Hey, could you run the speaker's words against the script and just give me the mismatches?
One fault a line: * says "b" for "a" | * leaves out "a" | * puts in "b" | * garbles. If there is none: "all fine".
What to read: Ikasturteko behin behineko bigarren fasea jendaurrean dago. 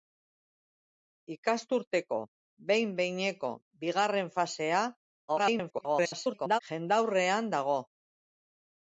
* garbles